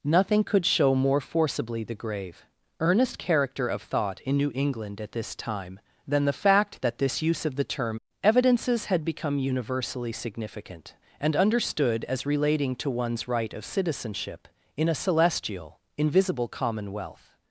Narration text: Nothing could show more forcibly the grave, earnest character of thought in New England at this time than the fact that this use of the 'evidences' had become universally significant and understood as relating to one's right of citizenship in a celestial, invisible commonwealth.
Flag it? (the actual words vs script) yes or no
yes